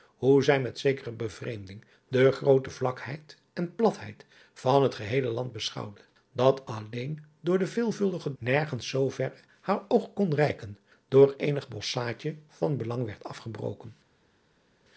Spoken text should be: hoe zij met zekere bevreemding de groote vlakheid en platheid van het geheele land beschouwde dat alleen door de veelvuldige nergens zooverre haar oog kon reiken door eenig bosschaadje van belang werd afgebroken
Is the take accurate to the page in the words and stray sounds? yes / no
yes